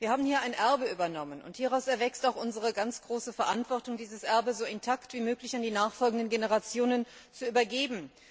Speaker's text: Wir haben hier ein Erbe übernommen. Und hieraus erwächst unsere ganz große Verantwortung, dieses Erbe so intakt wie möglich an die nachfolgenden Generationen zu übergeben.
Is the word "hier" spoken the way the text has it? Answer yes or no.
yes